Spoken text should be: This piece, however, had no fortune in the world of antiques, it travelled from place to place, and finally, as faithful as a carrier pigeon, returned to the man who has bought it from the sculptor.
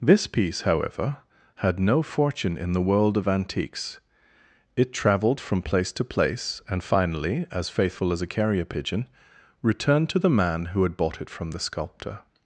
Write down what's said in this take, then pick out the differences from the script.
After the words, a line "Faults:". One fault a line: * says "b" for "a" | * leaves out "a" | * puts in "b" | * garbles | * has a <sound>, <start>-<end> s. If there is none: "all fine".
This piece, however, had no fortune in the world of antiques, it travelled from place to place, and finally, as faithful as a carrier pigeon, returned to the man who had bought it from the sculptor.
Faults:
* says "had" for "has"